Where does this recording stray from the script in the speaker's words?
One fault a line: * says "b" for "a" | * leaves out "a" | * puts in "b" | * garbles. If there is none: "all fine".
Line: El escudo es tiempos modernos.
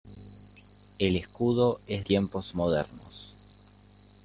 all fine